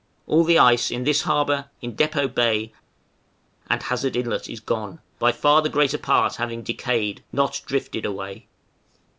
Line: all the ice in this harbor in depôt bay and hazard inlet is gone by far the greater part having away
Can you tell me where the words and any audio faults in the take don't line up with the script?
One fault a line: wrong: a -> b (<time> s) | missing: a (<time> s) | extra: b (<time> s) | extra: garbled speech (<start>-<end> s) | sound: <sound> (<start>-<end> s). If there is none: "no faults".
extra: decayed not drifted (6.6 s)